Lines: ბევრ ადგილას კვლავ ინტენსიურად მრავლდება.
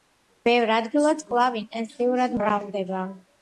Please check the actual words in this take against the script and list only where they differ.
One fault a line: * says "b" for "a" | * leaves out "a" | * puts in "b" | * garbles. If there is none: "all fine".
all fine